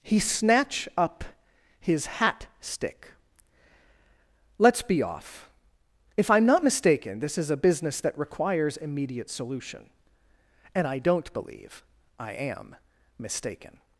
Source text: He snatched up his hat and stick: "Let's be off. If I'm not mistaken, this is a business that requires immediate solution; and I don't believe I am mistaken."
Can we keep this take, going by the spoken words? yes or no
no